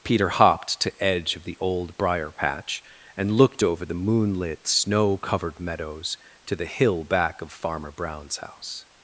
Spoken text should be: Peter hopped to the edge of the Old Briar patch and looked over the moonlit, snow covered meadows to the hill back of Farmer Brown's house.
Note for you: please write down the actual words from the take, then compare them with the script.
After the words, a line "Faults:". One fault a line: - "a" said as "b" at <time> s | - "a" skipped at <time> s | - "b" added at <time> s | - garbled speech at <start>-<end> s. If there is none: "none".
Peter hopped to edge of the Old Briar patch and looked over the moonlit, snow covered meadows to the hill back of Farmer Brown's house.
Faults:
- "the" skipped at 1.0 s